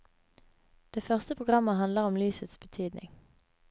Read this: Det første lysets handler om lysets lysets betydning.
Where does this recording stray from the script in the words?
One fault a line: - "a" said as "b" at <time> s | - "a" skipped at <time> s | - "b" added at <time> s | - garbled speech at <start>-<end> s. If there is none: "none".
- "lysets" said as "programmet" at 1.3 s
- "lysets" skipped at 2.6 s